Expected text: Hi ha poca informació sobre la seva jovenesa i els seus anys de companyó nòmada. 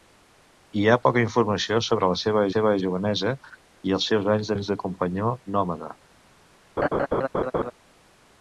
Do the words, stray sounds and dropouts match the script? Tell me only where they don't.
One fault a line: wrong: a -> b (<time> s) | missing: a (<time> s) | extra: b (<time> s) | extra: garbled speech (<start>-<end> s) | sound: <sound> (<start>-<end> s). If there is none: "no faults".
extra: seva (2.5 s)
extra: anys (4.5 s)
sound: laugh (6.8-7.7 s)